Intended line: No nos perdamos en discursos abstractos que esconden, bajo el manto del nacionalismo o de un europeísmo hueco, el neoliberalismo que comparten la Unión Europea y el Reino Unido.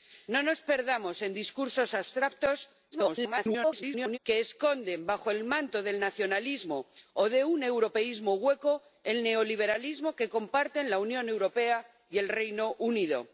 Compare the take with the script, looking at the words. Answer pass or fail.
fail